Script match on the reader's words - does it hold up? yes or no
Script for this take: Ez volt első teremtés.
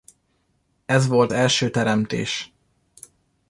yes